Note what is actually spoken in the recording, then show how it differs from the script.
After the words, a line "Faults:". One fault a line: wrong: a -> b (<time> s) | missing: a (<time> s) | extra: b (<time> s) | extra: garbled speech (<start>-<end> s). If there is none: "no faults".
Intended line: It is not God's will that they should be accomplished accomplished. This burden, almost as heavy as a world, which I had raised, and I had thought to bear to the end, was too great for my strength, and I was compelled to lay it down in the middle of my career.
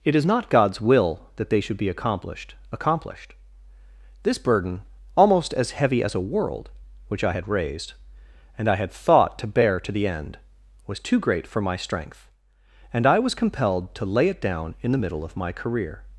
It is not God's will that they should be accomplished accomplished. This burden, almost as heavy as a world, which I had raised, and I had thought to bear to the end, was too great for my strength, and I was compelled to lay it down in the middle of my career.
Faults:
no faults